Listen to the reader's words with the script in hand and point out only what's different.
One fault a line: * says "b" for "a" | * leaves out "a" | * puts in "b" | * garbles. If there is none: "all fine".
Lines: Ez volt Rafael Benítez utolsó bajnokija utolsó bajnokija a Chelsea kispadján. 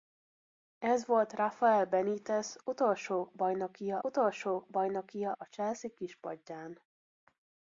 all fine